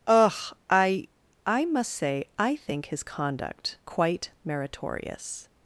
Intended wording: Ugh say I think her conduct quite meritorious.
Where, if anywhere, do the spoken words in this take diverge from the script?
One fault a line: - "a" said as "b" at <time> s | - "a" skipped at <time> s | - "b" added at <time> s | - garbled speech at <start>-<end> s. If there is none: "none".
- "I I must" added at 0.7 s
- "her" said as "his" at 2.9 s